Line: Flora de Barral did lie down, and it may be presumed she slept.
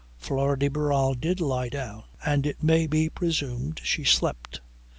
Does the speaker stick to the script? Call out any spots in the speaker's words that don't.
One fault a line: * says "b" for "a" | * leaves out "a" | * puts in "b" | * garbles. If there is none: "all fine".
all fine